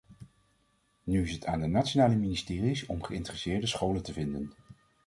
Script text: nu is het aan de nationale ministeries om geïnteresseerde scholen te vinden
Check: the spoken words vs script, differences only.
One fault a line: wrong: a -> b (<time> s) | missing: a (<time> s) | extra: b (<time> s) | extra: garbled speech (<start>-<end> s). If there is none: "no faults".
no faults